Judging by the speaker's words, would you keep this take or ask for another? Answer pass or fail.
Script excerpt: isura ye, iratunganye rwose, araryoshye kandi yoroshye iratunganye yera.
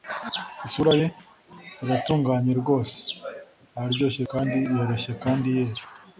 fail